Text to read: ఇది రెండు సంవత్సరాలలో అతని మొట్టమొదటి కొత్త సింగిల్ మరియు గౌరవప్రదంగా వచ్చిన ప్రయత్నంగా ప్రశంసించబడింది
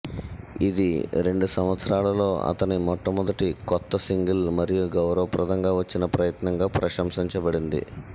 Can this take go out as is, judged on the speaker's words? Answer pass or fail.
pass